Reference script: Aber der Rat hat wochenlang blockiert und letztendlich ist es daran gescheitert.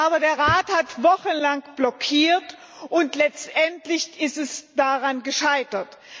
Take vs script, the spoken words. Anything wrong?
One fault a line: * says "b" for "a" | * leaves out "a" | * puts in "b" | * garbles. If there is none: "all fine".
all fine